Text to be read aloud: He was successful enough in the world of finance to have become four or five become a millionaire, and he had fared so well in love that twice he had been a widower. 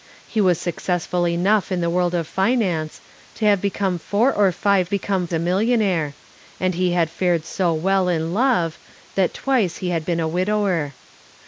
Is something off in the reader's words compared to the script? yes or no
no